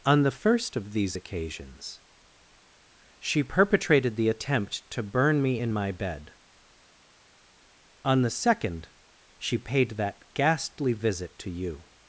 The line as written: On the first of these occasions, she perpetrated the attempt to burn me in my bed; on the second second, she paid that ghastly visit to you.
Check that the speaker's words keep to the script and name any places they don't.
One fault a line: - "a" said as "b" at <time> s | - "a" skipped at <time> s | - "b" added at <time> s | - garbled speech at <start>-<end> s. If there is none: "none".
- "second" skipped at 8.9 s